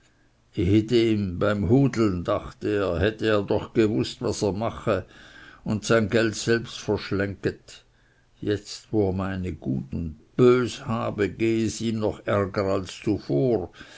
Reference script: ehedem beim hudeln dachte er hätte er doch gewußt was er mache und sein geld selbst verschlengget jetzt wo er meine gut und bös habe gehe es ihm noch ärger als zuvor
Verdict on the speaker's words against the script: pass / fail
pass